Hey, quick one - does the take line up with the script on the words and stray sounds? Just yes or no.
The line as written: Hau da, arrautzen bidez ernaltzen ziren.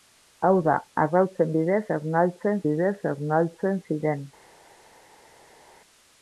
no